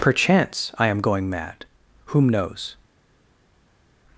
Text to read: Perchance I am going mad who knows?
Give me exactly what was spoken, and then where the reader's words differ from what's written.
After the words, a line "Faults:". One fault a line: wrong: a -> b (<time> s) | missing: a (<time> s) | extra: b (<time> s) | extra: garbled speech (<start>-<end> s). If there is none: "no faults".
Perchance I am going mad whom knows?
Faults:
wrong: who -> whom (2.0 s)